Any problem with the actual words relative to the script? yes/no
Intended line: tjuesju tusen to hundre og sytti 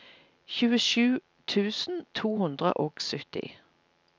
no